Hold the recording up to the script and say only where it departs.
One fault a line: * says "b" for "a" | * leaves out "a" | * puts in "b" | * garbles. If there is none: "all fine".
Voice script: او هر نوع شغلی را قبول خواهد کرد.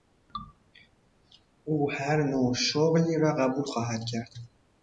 all fine